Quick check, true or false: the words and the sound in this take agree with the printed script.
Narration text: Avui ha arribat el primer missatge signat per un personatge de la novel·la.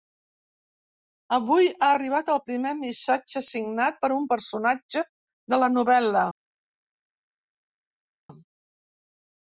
true